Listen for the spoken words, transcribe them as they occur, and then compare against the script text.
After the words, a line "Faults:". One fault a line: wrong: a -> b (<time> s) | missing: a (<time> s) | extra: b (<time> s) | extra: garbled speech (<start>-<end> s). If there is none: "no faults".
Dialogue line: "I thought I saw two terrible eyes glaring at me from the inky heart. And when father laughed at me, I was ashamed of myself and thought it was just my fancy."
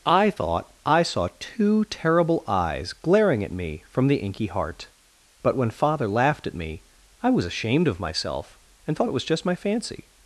"I thought I saw two terrible eyes glaring at me from the inky heart. But when father laughed at me, I was ashamed of myself and thought it was just my fancy."
Faults:
wrong: And -> But (5.4 s)